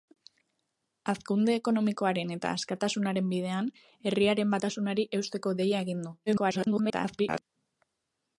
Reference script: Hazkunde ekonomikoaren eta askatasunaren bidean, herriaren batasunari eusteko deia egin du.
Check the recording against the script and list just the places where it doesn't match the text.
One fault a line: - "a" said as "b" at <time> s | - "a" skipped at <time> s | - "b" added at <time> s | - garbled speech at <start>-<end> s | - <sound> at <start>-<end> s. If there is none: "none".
- garbled speech at 6.3-7.4 s